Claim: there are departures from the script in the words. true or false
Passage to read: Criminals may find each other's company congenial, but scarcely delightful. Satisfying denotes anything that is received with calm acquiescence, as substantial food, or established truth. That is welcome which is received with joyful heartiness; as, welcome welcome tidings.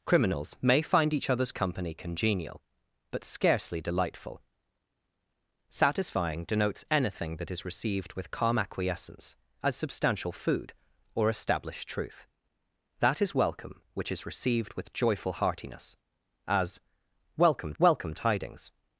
false